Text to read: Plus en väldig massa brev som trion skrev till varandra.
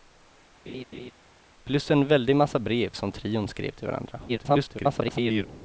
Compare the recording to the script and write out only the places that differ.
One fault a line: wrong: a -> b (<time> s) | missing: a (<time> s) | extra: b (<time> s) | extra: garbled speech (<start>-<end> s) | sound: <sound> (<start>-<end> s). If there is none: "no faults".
sound: laugh (0.7-1.1 s)
extra: garbled speech (4.3-5.5 s)